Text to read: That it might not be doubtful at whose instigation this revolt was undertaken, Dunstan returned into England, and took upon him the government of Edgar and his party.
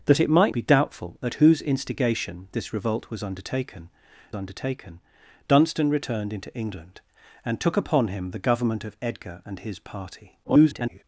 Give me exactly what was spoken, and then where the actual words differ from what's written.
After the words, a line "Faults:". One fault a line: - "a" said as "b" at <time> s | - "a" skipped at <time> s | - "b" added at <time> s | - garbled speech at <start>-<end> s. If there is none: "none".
That it might be doubtful at whose instigation this revolt was undertaken undertaken, Dunstan returned into England, and took upon him the government of Edgar and his party. [garbled]
Faults:
- "not" skipped at 0.6 s
- "undertaken" added at 4.4 s
- garbled speech at 10.4-11.0 s